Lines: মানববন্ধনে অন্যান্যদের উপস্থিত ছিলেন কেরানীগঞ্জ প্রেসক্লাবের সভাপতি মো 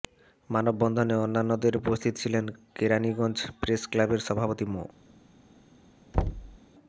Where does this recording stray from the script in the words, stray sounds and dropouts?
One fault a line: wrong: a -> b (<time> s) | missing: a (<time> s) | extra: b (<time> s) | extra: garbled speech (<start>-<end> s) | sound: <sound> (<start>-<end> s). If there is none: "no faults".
sound: thud (6.1-6.6 s)